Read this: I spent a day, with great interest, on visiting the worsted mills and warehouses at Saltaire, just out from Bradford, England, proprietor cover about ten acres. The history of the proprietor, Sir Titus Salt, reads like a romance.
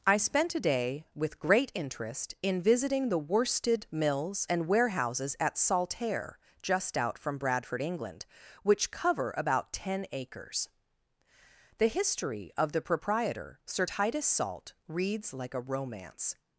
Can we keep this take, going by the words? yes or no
no